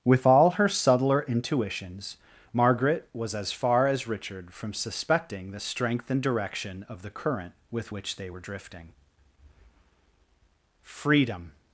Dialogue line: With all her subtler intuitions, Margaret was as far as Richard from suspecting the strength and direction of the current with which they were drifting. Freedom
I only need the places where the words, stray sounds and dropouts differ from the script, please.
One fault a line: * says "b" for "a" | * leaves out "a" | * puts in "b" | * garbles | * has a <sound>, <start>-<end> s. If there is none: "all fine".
all fine